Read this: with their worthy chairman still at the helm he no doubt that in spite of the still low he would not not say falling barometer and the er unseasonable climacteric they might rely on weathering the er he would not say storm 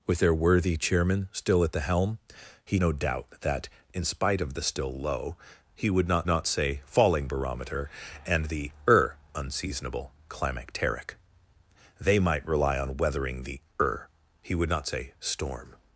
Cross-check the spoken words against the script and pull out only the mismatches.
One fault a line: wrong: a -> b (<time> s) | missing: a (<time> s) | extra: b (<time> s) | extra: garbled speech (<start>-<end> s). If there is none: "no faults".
no faults